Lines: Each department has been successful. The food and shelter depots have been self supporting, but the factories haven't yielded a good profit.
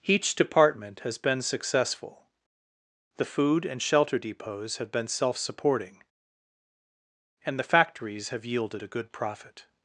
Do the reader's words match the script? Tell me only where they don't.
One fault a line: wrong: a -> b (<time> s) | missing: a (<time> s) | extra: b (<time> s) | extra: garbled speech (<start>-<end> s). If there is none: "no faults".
wrong: but -> and (7.4 s)
wrong: haven't -> have (8.3 s)